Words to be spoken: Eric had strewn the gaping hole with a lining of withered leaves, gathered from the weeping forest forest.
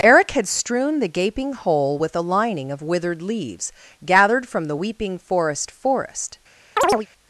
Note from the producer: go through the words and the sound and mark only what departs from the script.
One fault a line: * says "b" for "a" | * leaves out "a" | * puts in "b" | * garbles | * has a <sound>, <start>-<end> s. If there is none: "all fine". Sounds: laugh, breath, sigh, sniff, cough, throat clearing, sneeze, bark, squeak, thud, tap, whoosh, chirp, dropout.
* has a chirp, 6.8-7.1 s